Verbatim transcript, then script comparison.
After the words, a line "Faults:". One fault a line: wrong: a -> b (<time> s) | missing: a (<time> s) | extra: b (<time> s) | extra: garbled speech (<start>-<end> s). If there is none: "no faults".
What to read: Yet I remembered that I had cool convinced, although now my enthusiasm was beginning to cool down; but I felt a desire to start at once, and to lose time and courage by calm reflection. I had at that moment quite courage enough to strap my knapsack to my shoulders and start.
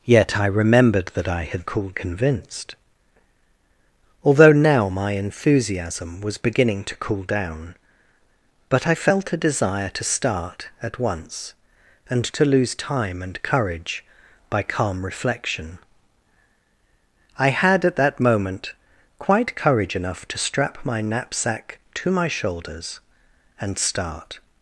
Yet I remembered that I had cool convinced, although now my enthusiasm was beginning to cool down; but I felt a desire to start at once, and to lose time and courage by calm reflection. I had at that moment quite courage enough to strap my knapsack to my shoulders and start.
Faults:
no faults